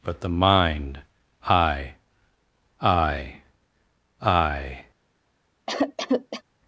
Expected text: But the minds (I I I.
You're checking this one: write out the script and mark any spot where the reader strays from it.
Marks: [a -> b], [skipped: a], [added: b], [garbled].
But the [minds -> mind] (I I I.